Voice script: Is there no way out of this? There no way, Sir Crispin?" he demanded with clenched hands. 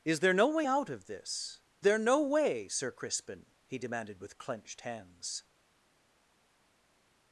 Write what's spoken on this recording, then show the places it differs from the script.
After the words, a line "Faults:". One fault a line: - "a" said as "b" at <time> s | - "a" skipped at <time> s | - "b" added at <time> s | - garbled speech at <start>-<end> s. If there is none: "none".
Is there no way out of this? There no way, Sir Crispin?" he demanded with clenched hands.
Faults:
none